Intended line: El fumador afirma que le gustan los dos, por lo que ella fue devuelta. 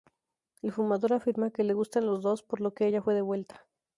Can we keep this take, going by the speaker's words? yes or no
yes